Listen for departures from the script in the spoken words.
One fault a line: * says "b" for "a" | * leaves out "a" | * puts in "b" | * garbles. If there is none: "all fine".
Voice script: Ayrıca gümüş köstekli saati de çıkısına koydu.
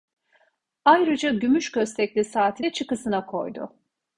all fine